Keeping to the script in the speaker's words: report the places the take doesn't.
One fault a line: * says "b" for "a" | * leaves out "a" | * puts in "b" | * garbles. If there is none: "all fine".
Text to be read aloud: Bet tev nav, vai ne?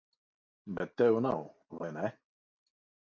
all fine